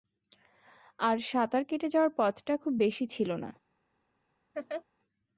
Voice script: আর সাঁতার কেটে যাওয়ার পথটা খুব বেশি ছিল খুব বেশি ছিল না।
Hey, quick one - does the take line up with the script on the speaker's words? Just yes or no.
no